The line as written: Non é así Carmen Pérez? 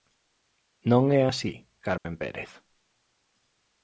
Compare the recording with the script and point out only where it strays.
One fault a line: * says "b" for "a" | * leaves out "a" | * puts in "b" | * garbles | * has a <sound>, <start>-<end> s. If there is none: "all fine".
* has a dropout, 2.0-2.1 s